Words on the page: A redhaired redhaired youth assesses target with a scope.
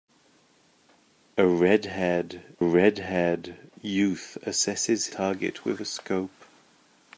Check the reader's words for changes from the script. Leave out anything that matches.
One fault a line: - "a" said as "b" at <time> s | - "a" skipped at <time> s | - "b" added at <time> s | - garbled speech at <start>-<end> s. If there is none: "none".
none